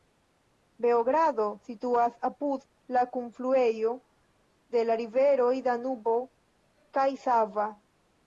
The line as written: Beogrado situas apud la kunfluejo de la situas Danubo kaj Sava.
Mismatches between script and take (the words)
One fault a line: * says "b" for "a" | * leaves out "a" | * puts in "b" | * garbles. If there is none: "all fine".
* says "riveroj" for "situas"